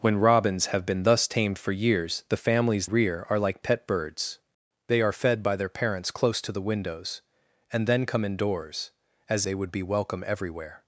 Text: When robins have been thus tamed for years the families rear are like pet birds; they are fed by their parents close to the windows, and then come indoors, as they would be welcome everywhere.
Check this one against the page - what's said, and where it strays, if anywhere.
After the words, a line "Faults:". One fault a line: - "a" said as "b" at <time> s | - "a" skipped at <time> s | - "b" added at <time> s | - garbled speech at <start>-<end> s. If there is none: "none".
When robins have been thus tamed for years the families rear are like pet birds; they are fed by their parents close to the windows, and then come indoors, as they would be welcome everywhere.
Faults:
none